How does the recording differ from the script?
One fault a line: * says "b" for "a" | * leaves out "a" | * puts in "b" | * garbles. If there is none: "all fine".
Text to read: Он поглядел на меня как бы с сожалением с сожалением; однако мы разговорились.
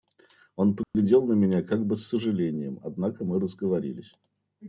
* leaves out "с сожалением"